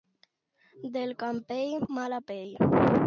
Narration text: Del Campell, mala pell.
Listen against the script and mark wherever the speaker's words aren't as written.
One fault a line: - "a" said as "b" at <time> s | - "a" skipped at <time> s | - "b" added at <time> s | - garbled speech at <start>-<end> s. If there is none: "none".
none